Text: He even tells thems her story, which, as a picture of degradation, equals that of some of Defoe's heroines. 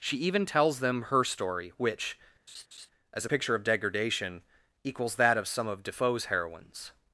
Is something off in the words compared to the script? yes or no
yes